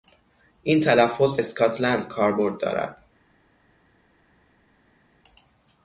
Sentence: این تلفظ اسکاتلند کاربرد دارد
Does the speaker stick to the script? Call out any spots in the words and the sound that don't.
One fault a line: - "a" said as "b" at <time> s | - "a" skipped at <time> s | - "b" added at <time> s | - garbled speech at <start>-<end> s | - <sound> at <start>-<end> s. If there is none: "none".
none